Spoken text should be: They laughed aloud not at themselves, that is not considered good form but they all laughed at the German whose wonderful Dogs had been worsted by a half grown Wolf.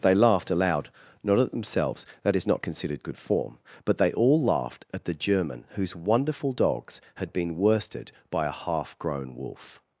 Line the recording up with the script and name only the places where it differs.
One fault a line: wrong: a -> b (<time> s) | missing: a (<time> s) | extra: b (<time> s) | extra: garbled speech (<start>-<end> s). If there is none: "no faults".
no faults